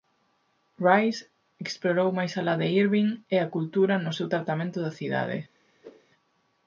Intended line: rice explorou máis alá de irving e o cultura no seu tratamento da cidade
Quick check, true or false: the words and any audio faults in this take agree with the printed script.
false